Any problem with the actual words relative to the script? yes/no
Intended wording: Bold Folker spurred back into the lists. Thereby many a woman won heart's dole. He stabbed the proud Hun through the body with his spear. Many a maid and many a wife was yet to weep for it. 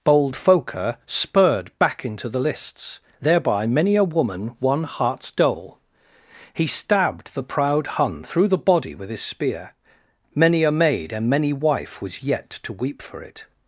yes